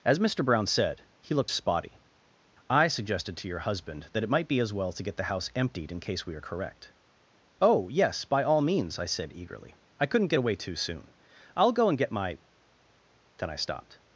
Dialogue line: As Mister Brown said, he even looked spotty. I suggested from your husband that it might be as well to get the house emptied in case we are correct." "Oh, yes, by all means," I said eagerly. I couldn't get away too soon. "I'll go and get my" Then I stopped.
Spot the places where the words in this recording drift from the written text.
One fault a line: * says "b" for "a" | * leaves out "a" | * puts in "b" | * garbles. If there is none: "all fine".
* leaves out "even"
* says "to" for "from"